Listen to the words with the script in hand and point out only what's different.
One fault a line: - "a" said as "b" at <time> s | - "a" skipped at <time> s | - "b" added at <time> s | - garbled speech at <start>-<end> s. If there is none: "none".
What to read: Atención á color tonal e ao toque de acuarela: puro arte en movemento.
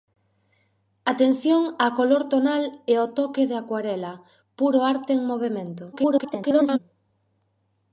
- garbled speech at 5.9-6.8 s